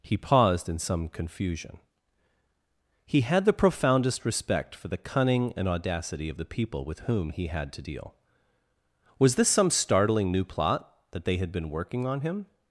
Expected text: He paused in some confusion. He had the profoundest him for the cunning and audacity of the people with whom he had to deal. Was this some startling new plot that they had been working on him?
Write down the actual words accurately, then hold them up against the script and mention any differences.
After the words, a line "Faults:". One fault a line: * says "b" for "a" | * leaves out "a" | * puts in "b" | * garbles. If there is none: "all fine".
He paused in some confusion. He had the profoundest respect for the cunning and audacity of the people with whom he had to deal. Was this some startling new plot that they had been working on him?
Faults:
* says "respect" for "him"